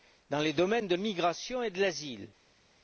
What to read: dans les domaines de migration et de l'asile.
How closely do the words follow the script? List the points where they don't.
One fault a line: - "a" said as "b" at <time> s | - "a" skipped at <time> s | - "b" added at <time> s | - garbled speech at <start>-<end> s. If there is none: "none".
none